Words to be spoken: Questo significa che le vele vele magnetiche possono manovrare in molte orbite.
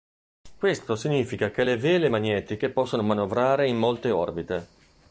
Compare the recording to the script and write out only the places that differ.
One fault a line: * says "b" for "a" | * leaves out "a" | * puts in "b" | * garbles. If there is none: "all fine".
* leaves out "vele"